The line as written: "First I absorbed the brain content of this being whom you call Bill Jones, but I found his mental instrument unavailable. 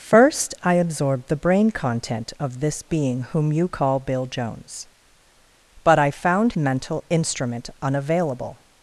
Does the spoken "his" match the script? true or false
false